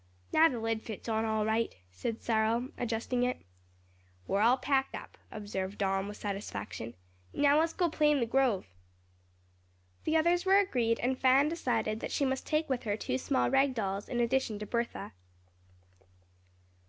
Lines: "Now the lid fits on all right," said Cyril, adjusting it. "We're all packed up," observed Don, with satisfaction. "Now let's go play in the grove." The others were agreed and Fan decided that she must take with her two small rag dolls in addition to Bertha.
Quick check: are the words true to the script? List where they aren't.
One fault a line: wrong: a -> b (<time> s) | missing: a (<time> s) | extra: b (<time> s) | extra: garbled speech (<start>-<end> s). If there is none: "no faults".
no faults